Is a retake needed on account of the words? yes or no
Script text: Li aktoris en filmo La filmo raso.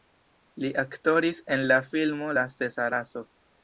yes